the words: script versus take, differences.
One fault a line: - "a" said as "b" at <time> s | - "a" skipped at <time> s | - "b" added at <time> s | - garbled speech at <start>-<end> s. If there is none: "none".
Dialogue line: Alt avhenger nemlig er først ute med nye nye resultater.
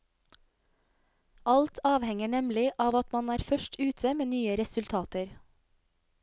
- "av at man" added at 2.9 s
- "nye" skipped at 4.6 s